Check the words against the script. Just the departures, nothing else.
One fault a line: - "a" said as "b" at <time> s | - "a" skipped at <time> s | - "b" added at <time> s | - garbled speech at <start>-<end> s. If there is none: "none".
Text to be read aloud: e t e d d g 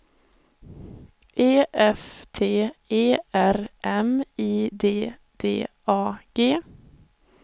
- "f" added at 1.7 s
- "r m i" added at 3.3 s
- "a" added at 5.9 s